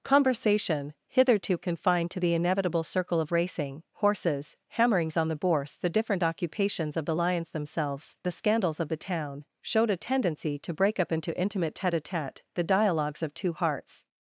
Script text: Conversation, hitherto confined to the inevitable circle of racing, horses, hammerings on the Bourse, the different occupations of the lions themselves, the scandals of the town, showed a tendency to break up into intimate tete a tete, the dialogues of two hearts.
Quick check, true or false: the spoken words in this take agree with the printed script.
true